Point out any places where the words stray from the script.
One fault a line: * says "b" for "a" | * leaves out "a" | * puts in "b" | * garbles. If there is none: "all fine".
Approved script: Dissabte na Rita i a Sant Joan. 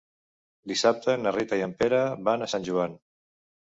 * puts in "en Pere van"